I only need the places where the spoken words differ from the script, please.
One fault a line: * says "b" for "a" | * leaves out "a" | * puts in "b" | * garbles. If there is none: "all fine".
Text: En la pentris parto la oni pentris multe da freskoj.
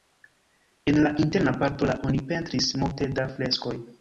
* says "interna" for "pentris"